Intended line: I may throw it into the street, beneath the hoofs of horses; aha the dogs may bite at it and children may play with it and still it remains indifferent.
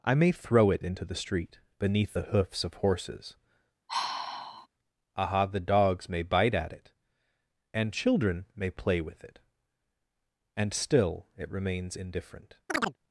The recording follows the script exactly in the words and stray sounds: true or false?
false